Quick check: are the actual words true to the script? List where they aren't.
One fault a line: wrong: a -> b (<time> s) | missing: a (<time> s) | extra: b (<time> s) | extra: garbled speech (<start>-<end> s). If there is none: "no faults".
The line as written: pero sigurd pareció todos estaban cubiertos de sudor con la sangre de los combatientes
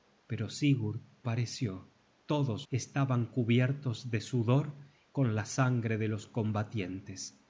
no faults